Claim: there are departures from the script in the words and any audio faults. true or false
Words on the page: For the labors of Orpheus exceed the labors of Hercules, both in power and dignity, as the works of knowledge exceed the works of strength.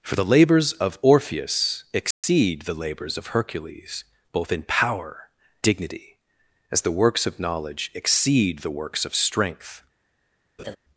true